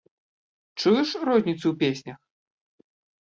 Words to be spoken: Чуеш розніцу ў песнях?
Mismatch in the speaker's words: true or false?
false